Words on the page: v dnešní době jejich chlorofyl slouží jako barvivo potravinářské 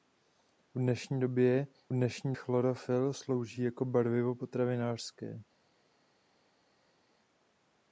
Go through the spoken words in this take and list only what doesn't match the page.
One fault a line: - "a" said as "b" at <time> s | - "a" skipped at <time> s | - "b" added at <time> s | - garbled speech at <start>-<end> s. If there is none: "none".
- "jejich" said as "dnešní" at 1.9 s